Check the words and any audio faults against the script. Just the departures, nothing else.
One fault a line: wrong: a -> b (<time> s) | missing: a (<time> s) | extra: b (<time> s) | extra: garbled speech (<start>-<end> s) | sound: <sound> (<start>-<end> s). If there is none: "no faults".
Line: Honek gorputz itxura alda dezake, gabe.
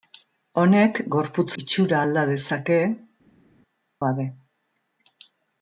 no faults